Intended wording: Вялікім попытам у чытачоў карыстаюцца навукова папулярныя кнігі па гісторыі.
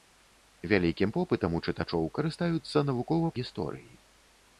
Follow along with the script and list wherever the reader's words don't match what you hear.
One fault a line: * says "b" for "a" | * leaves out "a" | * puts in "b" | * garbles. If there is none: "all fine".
* leaves out "папулярныя кнігі па"